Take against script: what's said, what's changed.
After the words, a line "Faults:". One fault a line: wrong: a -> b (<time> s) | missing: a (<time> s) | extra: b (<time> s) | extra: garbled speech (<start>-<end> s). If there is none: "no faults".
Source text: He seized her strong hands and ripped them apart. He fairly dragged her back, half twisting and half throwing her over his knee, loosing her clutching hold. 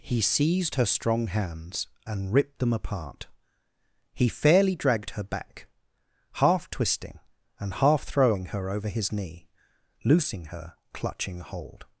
He seized her strong hands and ripped them apart. He fairly dragged her back, half twisting and half throwing her over his knee, loosing her clutching hold.
Faults:
no faults